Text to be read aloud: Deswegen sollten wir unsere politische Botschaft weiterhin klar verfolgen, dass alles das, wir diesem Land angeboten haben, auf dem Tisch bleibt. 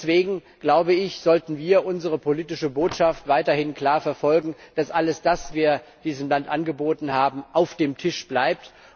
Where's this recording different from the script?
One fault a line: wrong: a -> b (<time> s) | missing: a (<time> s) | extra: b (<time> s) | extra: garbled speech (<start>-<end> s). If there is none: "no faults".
no faults